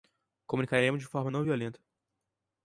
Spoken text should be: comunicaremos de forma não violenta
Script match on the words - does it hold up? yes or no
yes